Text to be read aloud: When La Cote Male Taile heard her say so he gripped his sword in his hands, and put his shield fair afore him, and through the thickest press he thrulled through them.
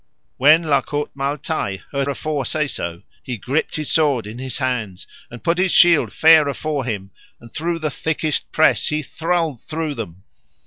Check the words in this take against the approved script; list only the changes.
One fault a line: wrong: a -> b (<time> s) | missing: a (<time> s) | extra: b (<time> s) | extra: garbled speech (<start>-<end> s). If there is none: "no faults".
wrong: her -> afore (2.1 s)